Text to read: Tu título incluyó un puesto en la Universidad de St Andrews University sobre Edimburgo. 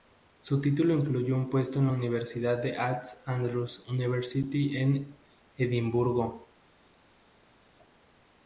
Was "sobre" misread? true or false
true